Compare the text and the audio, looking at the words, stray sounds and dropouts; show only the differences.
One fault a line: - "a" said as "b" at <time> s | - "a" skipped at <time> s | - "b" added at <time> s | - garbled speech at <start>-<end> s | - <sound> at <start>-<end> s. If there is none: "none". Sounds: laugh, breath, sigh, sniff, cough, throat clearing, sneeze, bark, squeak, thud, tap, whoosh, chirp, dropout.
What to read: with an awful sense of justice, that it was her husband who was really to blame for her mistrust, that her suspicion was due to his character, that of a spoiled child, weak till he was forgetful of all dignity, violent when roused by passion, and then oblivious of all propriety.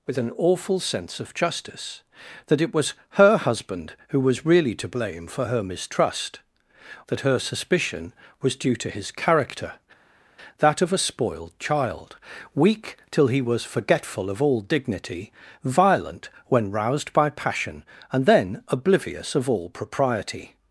none